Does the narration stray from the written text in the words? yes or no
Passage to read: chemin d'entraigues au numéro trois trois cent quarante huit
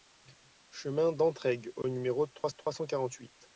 no